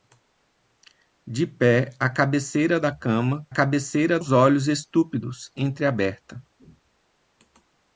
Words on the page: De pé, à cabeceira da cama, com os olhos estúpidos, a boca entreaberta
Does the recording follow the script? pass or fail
fail